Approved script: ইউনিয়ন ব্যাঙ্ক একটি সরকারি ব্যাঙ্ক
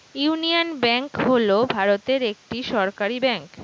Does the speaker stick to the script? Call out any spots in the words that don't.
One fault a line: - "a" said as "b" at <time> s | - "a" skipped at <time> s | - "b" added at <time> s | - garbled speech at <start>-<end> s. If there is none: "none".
- "হল ভারতের" added at 1.2 s